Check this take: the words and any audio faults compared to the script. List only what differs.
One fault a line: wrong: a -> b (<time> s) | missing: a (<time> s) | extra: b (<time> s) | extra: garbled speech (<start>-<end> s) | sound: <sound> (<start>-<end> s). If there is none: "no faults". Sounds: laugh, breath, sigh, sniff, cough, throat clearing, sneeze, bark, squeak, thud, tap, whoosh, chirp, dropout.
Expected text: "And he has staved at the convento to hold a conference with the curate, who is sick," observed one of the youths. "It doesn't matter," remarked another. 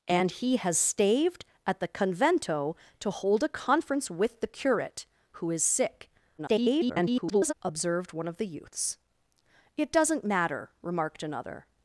extra: garbled speech (6.4-7.5 s)